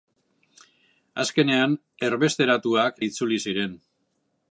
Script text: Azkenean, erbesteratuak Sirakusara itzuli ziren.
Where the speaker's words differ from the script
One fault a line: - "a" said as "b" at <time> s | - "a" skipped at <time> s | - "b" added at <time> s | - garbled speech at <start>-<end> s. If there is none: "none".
- "Sirakusara" skipped at 3.0 s